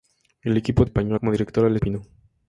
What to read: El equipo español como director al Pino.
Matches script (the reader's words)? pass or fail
pass